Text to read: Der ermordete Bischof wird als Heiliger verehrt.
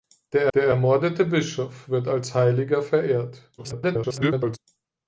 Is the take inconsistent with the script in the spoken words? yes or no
yes